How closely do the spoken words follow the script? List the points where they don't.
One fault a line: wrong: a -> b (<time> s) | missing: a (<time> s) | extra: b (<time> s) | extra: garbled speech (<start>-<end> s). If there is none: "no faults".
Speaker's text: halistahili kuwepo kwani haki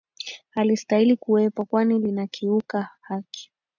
extra: linakiuka (2.0 s)